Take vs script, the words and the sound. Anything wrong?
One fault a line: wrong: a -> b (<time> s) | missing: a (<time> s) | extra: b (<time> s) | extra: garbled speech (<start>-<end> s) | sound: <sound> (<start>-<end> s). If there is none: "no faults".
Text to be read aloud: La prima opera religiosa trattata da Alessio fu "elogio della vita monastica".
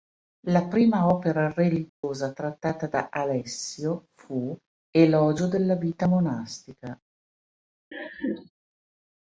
sound: dropout (1.9-2.0 s)
sound: laugh (7.9-8.5 s)